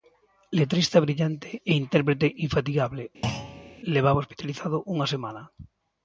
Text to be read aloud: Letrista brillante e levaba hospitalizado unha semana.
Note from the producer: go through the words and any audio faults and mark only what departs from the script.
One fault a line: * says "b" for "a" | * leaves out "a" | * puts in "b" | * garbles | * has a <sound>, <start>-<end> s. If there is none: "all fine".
* puts in "intérprete infatigable"
* has a thud, 3.2-3.8 s